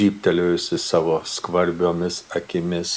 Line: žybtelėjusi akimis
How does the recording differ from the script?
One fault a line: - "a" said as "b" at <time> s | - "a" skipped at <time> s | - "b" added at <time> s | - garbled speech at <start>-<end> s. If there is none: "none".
- "savo skvarbiomis" added at 0.8 s